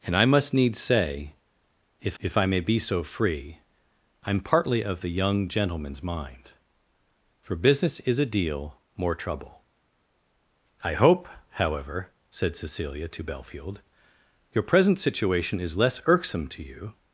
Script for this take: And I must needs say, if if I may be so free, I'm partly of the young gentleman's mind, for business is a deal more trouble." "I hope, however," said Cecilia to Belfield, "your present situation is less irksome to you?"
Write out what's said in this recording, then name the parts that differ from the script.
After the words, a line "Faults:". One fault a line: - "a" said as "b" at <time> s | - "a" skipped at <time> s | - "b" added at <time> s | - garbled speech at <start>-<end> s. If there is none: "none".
And I must needs say, if if I may be so free, I'm partly of the young gentleman's mind, for business is a deal more trouble." "I hope, however," said Cecilia to Belfield, "your present situation is less irksome to you?"
Faults:
none